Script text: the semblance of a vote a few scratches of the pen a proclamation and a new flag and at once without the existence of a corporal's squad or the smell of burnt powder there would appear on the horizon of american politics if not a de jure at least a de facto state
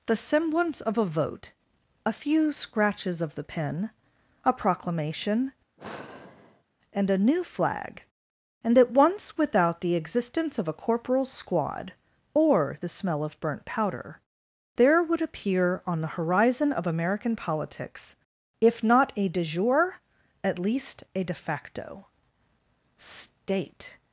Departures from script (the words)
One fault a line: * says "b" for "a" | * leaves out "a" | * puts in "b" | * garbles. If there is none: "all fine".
all fine